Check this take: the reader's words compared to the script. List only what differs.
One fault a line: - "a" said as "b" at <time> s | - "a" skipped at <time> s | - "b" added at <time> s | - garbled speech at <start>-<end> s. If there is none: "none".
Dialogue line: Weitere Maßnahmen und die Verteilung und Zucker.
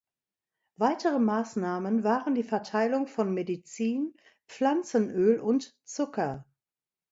- "und" said as "waren" at 2.0 s
- "von Medizin Pflanzenöl" added at 3.0 s